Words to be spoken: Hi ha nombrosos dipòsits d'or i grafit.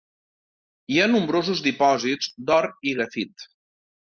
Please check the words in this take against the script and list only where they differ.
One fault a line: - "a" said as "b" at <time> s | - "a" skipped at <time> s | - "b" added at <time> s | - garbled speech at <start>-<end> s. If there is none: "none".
none